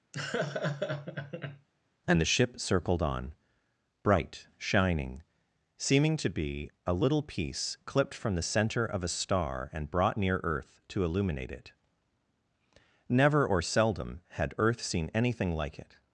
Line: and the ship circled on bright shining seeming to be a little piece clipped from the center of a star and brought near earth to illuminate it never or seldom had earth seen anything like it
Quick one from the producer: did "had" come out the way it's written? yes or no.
yes